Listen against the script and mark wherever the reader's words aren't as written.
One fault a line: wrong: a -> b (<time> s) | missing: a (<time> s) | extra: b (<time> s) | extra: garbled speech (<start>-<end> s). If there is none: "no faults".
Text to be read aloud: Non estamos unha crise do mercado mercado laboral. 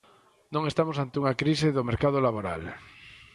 extra: ante (1.0 s)
missing: mercado (2.2 s)